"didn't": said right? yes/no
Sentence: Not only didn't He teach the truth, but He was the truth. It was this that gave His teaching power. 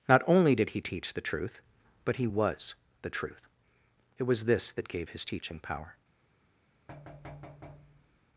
no